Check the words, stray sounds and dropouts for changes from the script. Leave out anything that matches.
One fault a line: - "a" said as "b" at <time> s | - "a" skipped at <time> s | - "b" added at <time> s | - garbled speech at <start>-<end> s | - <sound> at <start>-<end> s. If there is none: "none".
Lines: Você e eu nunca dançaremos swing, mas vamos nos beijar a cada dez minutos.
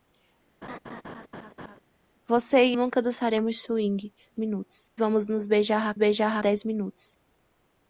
- laugh at 0.6-1.8 s
- "eu" skipped at 2.8 s
- "mas" said as "minutos" at 4.3 s
- "cada" said as "beijar" at 6.0 s